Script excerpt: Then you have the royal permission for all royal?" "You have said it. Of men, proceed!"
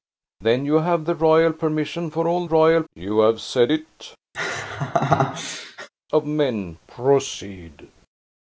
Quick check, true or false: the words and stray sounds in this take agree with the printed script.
false